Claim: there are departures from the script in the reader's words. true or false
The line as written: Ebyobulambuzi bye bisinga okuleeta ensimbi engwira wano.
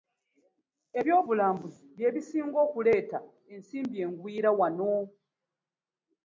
false